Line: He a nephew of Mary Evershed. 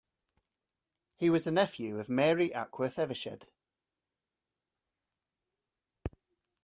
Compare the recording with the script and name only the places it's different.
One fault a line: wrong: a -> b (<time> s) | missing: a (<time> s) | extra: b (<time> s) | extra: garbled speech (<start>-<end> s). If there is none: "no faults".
extra: was (1.3 s)
extra: Ackworth (2.5 s)